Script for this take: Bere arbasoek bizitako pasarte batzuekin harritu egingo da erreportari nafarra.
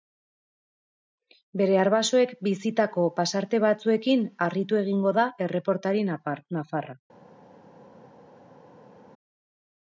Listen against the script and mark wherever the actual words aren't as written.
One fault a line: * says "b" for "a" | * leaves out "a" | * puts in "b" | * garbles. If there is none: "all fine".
all fine